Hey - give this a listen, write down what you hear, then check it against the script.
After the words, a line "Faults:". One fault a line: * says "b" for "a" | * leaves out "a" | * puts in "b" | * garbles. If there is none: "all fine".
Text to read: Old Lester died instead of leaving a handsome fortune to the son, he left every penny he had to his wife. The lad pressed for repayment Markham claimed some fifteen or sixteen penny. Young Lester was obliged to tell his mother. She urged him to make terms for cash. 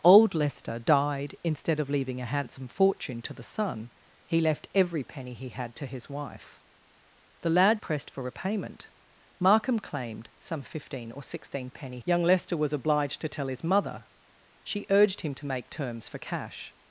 Old Lester died instead of leaving a handsome fortune to the son, he left every penny he had to his wife. The lad pressed for repayment Markham claimed some fifteen or sixteen penny. Young Lester was obliged to tell his mother. She urged him to make terms for cash.
Faults:
all fine